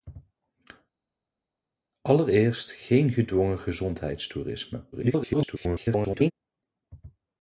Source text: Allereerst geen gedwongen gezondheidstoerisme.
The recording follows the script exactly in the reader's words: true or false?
false